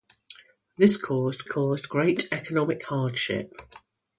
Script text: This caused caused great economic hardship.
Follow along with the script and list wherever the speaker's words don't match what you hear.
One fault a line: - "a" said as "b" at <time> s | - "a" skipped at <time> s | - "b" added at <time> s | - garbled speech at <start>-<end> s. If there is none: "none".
none